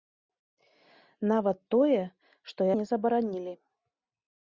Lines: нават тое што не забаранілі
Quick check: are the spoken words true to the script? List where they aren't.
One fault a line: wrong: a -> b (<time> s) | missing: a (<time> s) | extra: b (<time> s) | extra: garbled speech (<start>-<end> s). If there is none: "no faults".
no faults